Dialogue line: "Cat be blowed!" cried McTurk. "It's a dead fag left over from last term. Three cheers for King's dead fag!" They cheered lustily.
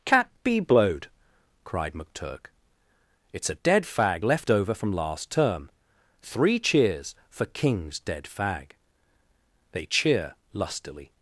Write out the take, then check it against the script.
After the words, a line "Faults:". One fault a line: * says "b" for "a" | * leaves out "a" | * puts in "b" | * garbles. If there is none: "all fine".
"Cat be blowed!" cried McTurk. "It's a dead fag left over from last term. Three cheers for King's dead fag!" They cheer lustily.
Faults:
* says "cheer" for "cheered"